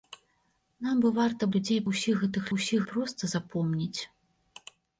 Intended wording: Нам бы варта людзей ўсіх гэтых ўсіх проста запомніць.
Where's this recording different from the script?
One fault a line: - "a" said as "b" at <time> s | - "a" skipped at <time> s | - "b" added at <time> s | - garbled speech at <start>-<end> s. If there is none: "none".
none